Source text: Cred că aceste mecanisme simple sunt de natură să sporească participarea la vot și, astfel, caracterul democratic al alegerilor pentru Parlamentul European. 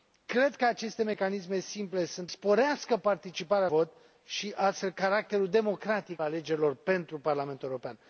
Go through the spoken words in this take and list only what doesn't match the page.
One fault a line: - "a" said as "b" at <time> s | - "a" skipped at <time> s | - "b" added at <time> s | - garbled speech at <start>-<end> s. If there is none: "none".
- "de natură să" skipped at 2.3 s
- "la" skipped at 3.7 s
- "al" skipped at 6.2 s